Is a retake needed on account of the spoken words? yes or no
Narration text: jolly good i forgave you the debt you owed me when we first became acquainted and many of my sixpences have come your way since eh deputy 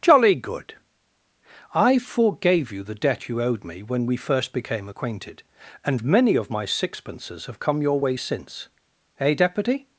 no